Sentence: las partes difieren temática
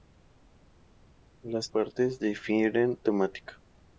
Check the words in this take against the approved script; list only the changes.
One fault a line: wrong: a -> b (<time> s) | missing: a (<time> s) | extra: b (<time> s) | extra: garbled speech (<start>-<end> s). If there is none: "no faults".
no faults